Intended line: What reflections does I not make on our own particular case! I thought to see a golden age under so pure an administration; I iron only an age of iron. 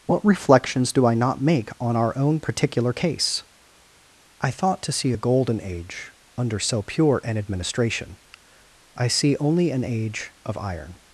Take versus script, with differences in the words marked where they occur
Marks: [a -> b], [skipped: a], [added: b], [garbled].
What reflections [does -> do] I not make on our own particular case! I thought to see a golden age under so pure an administration; I [iron -> see] only an age of iron.